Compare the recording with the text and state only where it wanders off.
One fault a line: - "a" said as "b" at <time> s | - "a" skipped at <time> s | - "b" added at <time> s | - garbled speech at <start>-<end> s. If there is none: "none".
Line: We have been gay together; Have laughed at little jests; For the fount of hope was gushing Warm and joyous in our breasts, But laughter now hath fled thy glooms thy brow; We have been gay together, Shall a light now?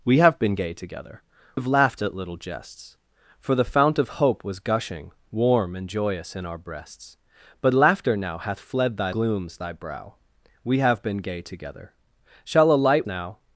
none